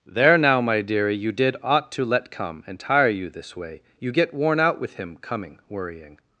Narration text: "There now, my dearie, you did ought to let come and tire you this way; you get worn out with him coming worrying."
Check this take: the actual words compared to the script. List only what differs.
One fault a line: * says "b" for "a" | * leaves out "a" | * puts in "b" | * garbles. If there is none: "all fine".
all fine